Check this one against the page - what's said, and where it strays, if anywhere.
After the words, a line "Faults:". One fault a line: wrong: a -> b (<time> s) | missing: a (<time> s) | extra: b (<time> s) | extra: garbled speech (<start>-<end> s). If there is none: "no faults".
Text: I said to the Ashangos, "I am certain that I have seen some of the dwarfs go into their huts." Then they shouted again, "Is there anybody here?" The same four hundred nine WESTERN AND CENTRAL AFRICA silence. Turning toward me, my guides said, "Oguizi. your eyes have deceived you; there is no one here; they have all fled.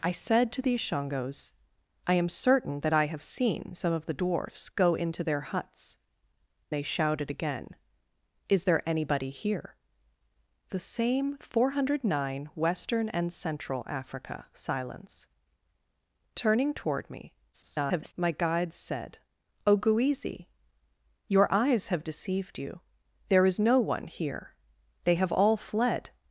I said to the Ashangos, "I am certain that I have seen some of the dwarfs go into their huts." They shouted again, "Is there anybody here?" The same four hundred nine WESTERN AND CENTRAL AFRICA silence. Turning toward me, [garbled] my guides said, "Oguizi. your eyes have deceived you; there is no one here; they have all fled.
Faults:
missing: Then (6.0 s)
extra: garbled speech (17.5-18.1 s)